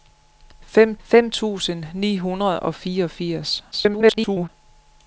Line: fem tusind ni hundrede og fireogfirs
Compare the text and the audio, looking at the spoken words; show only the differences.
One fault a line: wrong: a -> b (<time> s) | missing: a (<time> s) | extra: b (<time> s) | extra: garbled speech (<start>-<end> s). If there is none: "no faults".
extra: fem (1.0 s)
extra: garbled speech (3.7-4.5 s)